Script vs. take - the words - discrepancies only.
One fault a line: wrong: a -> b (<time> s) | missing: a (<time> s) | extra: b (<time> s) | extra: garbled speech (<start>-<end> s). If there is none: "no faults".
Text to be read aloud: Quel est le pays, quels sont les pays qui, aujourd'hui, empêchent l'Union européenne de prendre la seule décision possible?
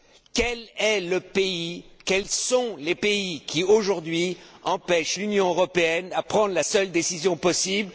no faults